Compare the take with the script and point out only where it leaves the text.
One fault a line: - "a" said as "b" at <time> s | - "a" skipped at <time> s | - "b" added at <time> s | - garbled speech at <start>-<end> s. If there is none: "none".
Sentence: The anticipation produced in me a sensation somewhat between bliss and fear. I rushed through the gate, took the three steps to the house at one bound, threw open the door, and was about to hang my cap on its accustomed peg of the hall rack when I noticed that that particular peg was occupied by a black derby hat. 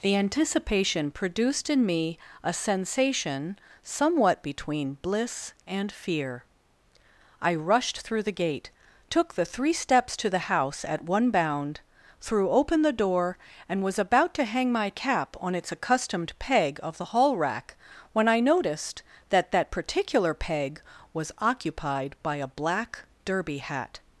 none